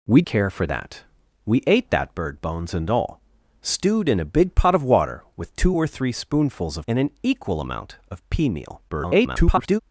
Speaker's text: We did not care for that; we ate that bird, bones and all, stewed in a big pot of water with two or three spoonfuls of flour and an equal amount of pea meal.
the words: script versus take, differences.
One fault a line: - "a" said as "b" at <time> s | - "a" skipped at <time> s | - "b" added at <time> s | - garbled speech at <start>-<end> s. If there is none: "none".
- "did not" skipped at 0.2 s
- "flour" skipped at 6.9 s
- garbled speech at 8.9-9.8 s